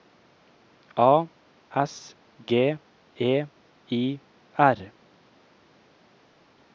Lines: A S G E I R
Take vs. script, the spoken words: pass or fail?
pass